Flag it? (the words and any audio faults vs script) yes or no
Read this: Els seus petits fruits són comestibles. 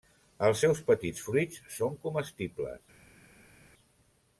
no